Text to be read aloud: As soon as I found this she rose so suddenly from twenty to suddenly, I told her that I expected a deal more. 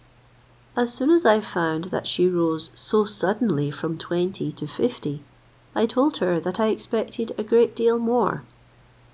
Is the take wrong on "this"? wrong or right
wrong